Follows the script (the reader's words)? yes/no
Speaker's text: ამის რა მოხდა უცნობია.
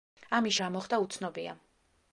yes